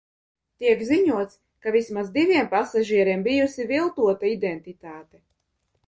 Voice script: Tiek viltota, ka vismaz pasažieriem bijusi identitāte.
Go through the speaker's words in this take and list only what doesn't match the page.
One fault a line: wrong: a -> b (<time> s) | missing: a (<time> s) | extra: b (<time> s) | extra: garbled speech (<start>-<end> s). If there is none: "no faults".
wrong: viltota -> ziņots (0.9 s)
extra: diviem (2.2 s)
extra: viltota (3.7 s)